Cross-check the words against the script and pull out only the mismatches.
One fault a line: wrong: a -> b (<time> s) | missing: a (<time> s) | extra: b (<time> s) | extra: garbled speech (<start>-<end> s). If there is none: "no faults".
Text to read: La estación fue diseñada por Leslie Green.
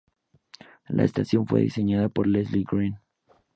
no faults